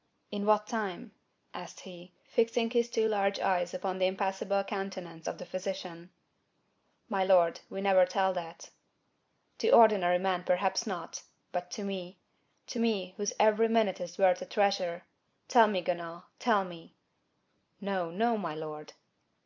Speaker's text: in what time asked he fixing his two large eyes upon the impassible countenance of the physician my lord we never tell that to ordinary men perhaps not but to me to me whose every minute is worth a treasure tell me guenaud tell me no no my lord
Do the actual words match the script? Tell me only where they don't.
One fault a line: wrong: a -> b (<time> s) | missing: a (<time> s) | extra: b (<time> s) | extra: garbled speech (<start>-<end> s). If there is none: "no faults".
no faults